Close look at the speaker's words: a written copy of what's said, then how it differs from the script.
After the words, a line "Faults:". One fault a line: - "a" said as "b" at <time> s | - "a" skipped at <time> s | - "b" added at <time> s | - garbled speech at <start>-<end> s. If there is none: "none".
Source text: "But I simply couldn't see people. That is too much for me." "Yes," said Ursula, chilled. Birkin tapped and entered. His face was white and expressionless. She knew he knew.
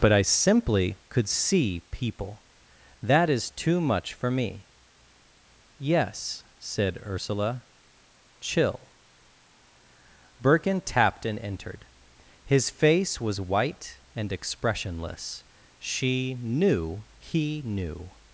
"But I simply could see people. That is too much for me." "Yes," said Ursula, chill. Birkin tapped and entered. His face was white and expressionless. She knew he knew.
Faults:
- "couldn't" said as "could" at 1.1 s
- "chilled" said as "chill" at 8.4 s